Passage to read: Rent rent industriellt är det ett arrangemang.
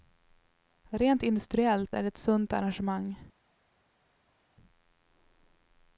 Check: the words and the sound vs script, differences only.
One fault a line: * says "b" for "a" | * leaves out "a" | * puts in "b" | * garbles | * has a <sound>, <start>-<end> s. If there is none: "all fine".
* leaves out "rent"
* puts in "sunt"